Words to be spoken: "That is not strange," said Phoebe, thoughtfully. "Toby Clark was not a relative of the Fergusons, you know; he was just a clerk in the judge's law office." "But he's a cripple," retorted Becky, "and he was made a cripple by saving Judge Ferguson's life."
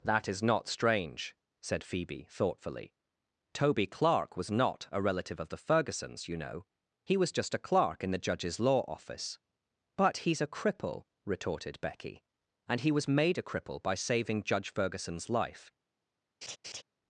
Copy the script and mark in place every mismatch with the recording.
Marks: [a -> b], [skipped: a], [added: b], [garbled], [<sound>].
"That is not strange," said Phoebe, thoughtfully. "Toby Clark was not a relative of the Fergusons, you know; he was just a clerk in the judge's law office." "But he's a cripple," retorted Becky, "and he was made a cripple by saving Judge Ferguson's life." [laugh]